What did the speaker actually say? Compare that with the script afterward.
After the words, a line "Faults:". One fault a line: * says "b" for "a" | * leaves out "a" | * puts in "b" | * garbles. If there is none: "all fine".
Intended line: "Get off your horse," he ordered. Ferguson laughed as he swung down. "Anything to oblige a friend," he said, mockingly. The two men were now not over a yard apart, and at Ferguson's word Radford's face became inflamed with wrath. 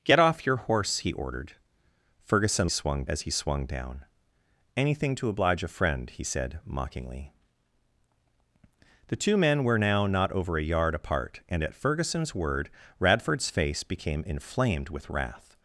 "Get off your horse," he ordered. Ferguson swung as he swung down. "Anything to oblige a friend," he said, mockingly. The two men were now not over a yard apart, and at Ferguson's word Radford's face became inflamed with wrath.
Faults:
* says "swung" for "laughed"